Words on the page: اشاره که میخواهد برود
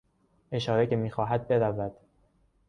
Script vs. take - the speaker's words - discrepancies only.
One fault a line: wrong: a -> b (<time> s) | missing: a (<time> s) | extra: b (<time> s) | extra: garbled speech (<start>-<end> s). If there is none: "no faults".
no faults